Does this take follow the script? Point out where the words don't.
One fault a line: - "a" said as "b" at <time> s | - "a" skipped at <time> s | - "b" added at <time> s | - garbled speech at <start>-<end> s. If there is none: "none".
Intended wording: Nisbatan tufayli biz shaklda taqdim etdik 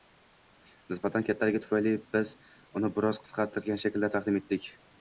- "kattaligi" added at 1.3 s
- "uni biroz qisqartirilgan" added at 2.8 s